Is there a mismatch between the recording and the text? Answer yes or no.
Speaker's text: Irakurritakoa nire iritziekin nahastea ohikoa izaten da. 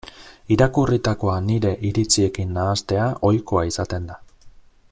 no